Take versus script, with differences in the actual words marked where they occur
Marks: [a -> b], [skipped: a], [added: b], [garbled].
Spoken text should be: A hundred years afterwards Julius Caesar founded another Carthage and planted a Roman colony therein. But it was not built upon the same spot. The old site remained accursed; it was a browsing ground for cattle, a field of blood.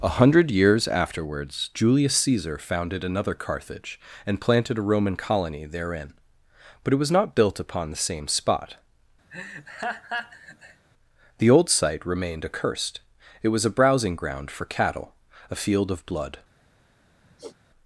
A hundred years afterwards Julius Caesar founded another Carthage and planted a Roman colony therein. But it was not built upon the same spot. The old site remained accursed; it was a browsing ground for cattle, a field of blood.